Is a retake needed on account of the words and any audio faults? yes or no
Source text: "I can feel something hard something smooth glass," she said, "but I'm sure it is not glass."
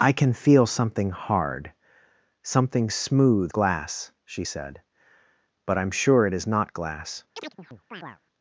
yes